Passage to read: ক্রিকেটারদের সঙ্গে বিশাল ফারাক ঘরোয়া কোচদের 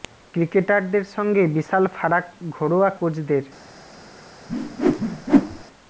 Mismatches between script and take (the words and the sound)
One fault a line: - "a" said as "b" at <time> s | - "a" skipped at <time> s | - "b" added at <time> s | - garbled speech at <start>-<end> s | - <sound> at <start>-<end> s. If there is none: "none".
- whoosh at 4.5-5.6 s